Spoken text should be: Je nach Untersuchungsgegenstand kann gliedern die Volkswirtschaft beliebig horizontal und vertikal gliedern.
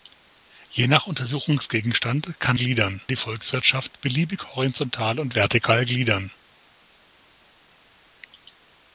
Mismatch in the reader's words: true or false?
false